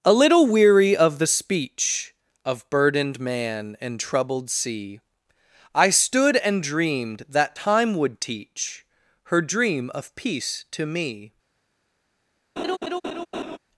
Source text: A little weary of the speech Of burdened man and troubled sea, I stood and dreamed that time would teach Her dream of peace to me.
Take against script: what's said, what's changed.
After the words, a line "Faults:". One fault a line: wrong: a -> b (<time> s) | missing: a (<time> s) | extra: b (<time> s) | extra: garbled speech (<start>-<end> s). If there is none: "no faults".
A little weary of the speech Of burdened man and troubled sea, I stood and dreamed that time would teach Her dream of peace to me.
Faults:
no faults